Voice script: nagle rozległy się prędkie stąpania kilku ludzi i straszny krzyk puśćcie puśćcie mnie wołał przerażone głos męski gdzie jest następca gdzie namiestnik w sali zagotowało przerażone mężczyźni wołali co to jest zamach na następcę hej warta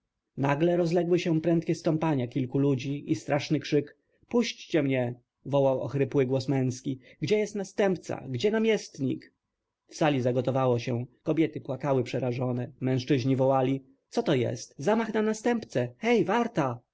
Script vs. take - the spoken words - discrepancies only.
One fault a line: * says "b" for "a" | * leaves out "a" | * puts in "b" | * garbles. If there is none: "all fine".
* leaves out "puśćcie"
* says "ochrypły" for "przerażone"
* puts in "się kobiety płakały"